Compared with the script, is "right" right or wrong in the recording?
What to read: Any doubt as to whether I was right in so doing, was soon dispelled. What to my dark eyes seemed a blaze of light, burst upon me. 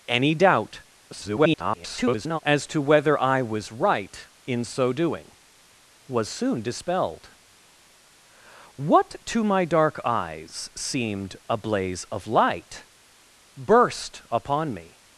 right